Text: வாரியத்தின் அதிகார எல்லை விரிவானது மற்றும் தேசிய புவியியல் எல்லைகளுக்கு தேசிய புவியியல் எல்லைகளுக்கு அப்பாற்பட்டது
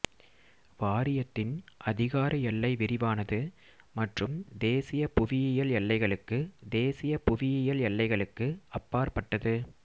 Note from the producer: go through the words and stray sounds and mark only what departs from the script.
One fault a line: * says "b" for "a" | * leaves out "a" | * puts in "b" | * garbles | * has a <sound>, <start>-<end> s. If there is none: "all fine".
all fine